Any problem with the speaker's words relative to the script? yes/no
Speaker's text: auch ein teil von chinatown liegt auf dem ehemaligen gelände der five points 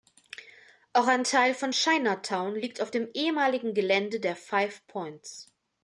no